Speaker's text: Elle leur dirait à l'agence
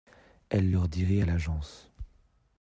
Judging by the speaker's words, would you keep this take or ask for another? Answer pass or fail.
pass